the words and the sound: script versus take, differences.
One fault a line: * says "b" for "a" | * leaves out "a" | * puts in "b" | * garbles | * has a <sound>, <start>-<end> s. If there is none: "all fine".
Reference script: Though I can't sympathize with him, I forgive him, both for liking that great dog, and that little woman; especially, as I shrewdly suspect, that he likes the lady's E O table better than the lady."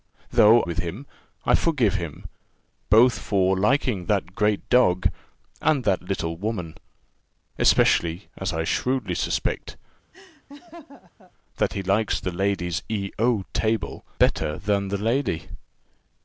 * leaves out "I can't sympathize"
* has a laugh, 10.1-11.3 s